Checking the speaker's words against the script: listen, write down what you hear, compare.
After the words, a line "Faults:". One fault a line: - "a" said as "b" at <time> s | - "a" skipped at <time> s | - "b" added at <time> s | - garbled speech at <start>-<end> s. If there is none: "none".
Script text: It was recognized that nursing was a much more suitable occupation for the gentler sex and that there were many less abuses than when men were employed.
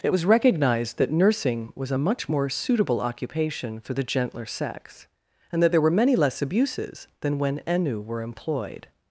It was recognized that nursing was a much more suitable occupation for the gentler sex and that there were many less abuses than when ennu were employed.
Faults:
- "men" said as "ennu" at 7.6 s